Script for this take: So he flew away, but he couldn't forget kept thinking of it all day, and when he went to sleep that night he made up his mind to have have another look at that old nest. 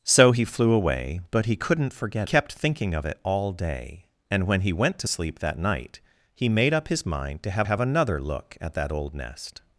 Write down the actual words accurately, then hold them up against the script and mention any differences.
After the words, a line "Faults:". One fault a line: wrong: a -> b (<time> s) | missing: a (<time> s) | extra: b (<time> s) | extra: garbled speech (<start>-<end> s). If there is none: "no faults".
So he flew away, but he couldn't forget kept thinking of it all day, and when he went to sleep that night he made up his mind to have have another look at that old nest.
Faults:
no faults